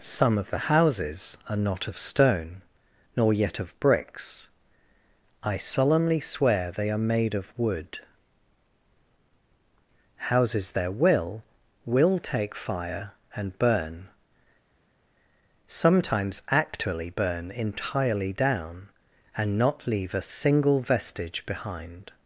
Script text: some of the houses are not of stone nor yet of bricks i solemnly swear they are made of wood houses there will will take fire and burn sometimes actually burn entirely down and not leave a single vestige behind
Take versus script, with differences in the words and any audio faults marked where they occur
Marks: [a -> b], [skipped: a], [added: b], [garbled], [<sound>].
some of the houses are not of stone nor yet of bricks i solemnly swear they are made of wood houses there will will take fire and burn sometimes actually burn entirely down and not leave a single vestige behind